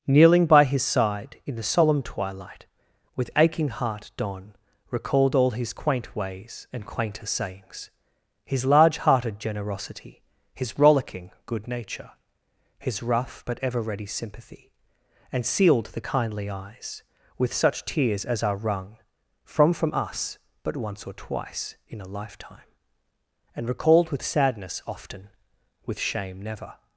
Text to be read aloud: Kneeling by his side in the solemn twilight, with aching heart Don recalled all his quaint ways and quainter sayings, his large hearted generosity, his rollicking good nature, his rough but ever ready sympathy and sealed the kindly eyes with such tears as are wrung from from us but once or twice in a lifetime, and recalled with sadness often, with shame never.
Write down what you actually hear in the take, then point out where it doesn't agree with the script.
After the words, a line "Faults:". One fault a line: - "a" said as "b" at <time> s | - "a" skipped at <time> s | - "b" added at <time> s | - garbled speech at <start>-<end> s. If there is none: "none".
Kneeling by his side in the solemn twilight, with aching heart Don recalled all his quaint ways and quainter sayings, his large hearted generosity, his rollicking good nature, his rough but ever ready sympathy and sealed the kindly eyes with such tears as are wrung from from us but once or twice in a lifetime, and recalled with sadness often, with shame never.
Faults:
none